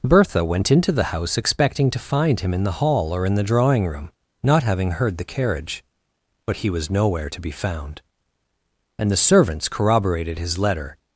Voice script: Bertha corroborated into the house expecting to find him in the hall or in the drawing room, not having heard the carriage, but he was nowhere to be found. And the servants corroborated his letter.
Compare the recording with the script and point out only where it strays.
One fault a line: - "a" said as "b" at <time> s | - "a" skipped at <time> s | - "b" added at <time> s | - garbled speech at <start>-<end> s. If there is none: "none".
- "corroborated" said as "went" at 0.4 s